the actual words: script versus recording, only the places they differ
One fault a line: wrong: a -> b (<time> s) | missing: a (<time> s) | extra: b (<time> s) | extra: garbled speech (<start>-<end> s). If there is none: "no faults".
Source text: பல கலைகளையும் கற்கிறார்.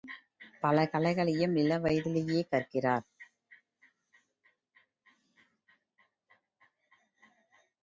extra: இளவயதிலேயே (1.6 s)